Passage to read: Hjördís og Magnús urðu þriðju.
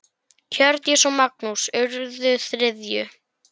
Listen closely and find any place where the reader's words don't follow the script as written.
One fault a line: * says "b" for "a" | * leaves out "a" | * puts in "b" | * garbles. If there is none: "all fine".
all fine